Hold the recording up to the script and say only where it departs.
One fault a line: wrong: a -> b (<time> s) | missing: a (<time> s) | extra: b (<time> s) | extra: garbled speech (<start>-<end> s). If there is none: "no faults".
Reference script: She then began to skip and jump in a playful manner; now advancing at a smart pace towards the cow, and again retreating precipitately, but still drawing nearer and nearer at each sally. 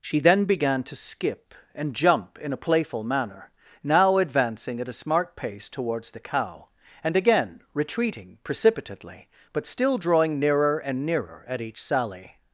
no faults